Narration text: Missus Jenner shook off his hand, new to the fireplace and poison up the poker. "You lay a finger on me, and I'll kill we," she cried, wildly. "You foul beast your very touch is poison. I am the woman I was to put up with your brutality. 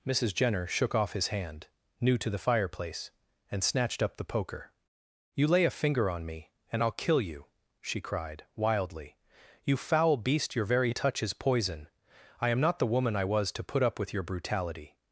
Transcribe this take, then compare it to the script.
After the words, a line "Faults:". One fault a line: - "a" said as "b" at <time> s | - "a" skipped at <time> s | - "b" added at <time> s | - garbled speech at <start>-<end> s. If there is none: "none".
Missus Jenner shook off his hand, new to the fireplace and snatched up the poker. "You lay a finger on me, and I'll kill you," she cried, wildly. "You foul beast your very touch is poison. I am not the woman I was to put up with your brutality.
Faults:
- "poison" said as "snatched" at 3.6 s
- "we" said as "you" at 7.2 s
- "not" added at 12.6 s